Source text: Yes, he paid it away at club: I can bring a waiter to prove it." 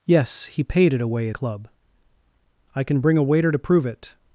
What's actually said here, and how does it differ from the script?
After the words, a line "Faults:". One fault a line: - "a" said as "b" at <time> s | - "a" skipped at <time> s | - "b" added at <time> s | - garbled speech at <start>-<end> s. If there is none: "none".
Yes, he paid it away at club: I can bring a waiter to prove it."
Faults:
none